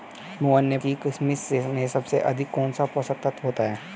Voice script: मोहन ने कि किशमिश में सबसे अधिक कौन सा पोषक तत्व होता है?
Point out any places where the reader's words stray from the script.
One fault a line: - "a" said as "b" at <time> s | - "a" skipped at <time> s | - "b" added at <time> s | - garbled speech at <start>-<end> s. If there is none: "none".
none